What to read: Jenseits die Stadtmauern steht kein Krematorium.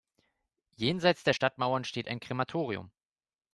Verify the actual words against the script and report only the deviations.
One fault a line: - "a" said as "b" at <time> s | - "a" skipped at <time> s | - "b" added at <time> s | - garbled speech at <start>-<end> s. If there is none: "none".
- "die" said as "der" at 1.2 s
- "kein" said as "ein" at 2.1 s